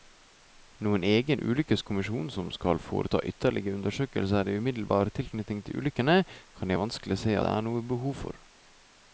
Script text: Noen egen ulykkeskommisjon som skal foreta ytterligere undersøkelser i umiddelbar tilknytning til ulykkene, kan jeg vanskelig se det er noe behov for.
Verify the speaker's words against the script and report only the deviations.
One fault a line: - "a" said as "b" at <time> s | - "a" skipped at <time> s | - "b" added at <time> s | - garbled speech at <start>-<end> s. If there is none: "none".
none